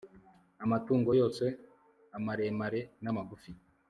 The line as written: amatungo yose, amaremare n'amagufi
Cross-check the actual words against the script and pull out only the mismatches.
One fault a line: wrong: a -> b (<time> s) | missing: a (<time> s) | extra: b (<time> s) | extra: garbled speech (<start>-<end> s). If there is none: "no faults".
no faults